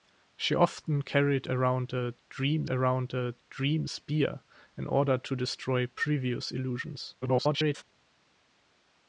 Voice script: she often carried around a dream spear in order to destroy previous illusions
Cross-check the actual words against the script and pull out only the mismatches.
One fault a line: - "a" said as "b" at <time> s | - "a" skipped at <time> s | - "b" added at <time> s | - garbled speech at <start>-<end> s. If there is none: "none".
- "around a dream" added at 2.7 s
- garbled speech at 7.2-7.8 s